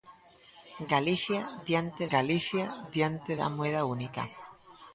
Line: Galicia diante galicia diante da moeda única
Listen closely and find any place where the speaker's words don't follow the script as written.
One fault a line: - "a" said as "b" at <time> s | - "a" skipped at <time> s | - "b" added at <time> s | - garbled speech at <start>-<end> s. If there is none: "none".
none